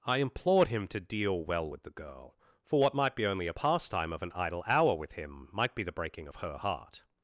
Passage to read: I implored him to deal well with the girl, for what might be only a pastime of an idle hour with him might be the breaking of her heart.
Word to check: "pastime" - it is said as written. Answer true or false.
true